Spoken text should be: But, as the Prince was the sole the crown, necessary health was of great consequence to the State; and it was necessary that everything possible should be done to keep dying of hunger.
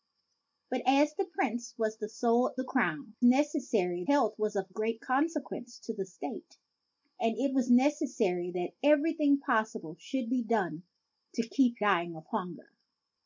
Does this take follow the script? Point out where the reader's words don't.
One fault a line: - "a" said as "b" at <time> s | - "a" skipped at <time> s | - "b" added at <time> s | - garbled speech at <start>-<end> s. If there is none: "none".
none